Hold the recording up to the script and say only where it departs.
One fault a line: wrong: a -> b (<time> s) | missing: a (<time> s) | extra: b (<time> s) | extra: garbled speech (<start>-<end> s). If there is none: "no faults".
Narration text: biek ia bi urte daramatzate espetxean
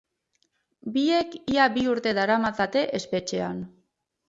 no faults